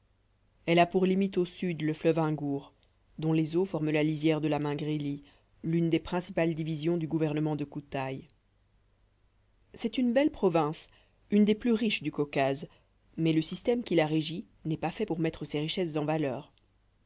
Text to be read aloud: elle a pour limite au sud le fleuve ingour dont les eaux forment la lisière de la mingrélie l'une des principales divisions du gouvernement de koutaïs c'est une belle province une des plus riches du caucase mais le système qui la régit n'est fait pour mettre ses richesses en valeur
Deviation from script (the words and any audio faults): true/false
true